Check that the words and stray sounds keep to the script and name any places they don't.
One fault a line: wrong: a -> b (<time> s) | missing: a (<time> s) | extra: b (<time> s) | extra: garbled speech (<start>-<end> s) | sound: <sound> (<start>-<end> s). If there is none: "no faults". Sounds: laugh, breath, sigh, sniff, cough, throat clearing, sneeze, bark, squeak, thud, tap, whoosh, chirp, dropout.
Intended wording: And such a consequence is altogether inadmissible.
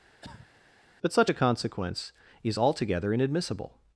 sound: cough (0.2-0.5 s)
wrong: And -> But (1.0 s)